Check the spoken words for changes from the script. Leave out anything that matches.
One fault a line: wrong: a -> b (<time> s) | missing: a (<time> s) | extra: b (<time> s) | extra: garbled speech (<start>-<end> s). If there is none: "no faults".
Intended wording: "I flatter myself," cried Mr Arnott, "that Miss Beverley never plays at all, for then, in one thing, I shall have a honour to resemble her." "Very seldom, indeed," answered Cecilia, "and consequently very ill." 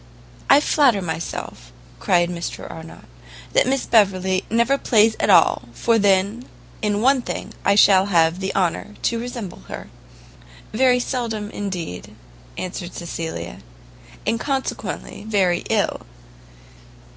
wrong: a -> the (8.4 s)